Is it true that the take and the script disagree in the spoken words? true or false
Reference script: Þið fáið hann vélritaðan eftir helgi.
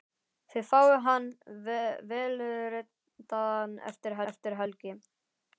true